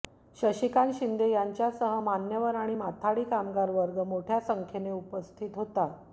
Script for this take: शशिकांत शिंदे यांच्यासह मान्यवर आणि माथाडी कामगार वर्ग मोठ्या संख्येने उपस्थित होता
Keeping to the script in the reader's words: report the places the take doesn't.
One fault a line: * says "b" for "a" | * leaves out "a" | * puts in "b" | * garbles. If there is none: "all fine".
all fine